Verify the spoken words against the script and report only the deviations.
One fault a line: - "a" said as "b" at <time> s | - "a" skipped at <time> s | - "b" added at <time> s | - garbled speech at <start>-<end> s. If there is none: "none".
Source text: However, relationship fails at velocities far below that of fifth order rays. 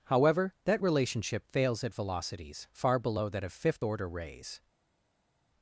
- "that" added at 0.7 s